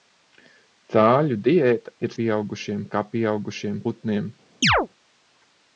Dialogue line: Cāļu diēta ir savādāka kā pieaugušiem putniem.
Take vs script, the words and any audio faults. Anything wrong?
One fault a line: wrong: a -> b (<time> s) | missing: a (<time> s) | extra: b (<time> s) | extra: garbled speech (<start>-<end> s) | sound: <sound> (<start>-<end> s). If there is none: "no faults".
wrong: savādāka -> pieaugušiem (2.2 s)
sound: chirp (4.6-4.9 s)